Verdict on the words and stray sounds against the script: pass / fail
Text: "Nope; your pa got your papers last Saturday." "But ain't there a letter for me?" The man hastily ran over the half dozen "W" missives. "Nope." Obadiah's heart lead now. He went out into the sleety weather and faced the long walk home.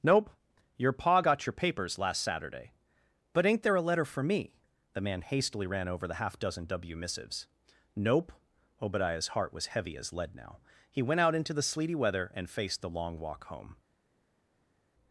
fail